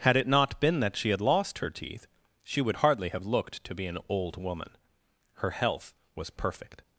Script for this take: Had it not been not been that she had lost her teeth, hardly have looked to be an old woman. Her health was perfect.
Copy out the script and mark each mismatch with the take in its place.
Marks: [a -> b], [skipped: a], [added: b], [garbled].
Had it not been [skipped: not been] that she had lost her teeth, [added: she would] hardly have looked to be an old woman. Her health was perfect.